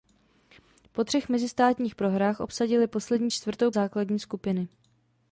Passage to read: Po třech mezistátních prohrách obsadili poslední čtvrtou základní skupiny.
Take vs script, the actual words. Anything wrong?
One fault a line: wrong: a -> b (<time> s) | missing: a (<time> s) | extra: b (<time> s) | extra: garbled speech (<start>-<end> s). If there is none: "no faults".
no faults